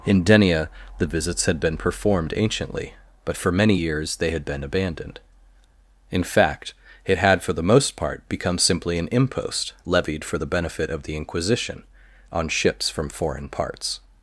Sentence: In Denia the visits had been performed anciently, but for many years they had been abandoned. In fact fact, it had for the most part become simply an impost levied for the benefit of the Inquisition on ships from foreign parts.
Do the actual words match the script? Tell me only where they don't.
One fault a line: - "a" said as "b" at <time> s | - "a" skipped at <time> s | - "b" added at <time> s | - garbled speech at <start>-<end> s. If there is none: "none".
- "fact" skipped at 6.7 s